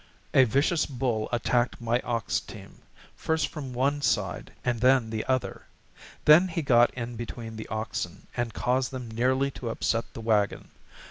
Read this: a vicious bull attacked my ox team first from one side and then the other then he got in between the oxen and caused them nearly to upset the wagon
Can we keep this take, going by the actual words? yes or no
yes